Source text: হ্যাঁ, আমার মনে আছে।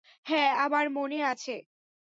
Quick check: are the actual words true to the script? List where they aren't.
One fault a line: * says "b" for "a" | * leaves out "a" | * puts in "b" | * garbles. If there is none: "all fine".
all fine